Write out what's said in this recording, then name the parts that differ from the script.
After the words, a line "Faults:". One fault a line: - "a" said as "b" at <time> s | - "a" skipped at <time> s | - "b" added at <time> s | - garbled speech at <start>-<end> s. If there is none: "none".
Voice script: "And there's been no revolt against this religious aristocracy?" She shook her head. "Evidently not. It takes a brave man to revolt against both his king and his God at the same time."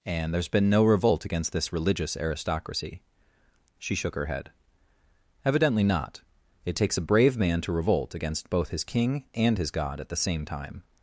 "And there's been no revolt against this religious aristocracy?" She shook her head. "Evidently not. It takes a brave man to revolt against both his king and his God at the same time."
Faults:
none